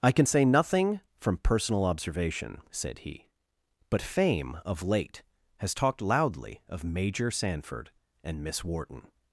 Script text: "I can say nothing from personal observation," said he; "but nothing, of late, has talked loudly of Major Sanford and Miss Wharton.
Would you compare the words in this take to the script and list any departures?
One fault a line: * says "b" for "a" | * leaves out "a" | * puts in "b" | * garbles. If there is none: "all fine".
* says "fame" for "nothing"